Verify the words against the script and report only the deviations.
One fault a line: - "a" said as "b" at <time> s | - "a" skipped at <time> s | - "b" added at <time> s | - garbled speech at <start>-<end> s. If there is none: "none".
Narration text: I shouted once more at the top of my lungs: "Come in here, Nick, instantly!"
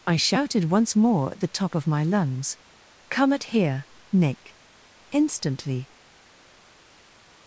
- "in" said as "at" at 3.3 s